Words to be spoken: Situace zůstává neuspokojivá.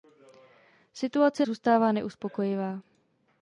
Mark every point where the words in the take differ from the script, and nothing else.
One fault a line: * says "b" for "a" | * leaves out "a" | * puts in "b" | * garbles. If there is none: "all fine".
all fine